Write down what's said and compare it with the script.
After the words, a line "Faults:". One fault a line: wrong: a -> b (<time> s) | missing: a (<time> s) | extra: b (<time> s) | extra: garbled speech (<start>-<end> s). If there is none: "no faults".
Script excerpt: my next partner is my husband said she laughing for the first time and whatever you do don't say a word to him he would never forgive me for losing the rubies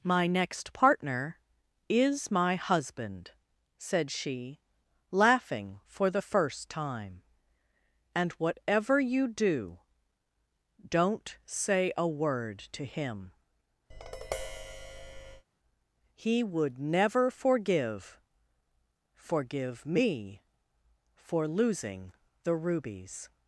my next partner is my husband said she laughing for the first time and whatever you do don't say a word to him he would never forgive forgive me for losing the rubies
Faults:
extra: forgive (19.2 s)